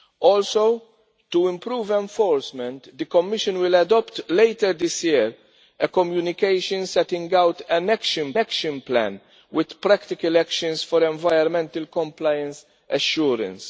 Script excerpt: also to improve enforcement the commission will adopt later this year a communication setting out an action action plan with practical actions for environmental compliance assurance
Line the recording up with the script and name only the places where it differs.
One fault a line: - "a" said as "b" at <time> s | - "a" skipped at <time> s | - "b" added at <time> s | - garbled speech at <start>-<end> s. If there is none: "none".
none